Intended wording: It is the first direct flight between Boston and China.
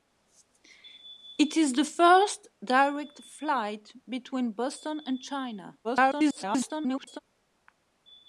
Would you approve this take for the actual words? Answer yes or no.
no